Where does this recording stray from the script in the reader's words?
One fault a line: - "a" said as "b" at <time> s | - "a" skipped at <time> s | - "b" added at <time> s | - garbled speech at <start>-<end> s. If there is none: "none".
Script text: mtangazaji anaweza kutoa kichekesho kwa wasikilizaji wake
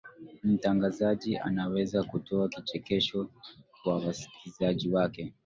none